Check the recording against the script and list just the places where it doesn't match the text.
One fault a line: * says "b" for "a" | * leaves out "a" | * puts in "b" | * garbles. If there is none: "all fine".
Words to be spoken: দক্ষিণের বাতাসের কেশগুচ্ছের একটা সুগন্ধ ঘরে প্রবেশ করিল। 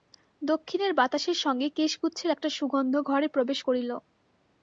* puts in "সঙ্গে"